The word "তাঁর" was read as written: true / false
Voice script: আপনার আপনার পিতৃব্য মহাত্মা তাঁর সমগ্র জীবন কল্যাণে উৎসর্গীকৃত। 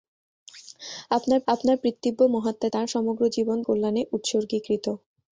true